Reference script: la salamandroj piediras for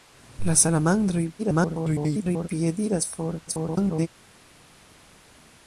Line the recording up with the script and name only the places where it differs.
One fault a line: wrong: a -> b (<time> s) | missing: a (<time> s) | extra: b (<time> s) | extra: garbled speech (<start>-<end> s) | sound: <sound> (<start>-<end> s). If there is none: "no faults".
extra: garbled speech (1.4-2.5 s)
extra: garbled speech (3.5-4.1 s)